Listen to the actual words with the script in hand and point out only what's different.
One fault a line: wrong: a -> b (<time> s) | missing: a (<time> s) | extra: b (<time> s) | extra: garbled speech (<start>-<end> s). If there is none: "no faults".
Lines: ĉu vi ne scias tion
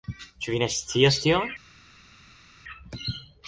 no faults